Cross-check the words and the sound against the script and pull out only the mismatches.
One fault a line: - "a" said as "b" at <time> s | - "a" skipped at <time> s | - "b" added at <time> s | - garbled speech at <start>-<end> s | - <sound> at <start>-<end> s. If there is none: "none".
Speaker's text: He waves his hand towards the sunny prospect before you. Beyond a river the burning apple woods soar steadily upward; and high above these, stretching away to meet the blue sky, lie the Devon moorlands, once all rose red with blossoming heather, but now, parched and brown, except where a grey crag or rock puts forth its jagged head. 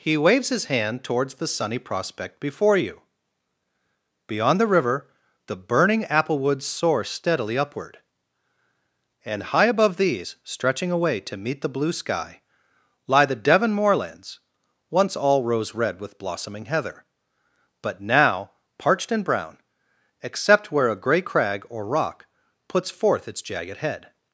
- "a" said as "the" at 4.6 s